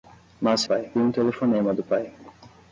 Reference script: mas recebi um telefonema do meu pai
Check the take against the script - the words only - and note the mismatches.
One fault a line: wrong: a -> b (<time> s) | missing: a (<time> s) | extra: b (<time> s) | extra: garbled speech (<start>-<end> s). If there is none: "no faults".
wrong: recebi -> pai (0.6 s)
missing: meu (1.8 s)